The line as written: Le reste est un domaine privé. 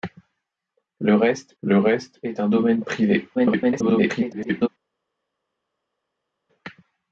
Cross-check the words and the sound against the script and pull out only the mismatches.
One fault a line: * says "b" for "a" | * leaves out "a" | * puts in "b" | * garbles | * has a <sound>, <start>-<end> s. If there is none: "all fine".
* puts in "le reste"
* garbles